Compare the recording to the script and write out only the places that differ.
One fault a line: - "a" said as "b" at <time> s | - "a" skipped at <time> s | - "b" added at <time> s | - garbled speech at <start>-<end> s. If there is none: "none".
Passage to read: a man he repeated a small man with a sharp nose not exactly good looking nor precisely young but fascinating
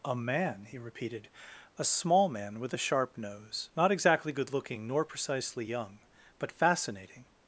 none